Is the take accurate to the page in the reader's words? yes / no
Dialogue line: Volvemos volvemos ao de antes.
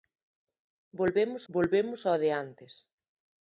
yes